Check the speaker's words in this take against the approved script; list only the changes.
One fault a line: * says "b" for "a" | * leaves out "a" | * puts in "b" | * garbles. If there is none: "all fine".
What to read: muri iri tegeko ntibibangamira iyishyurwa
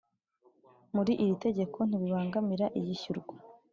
all fine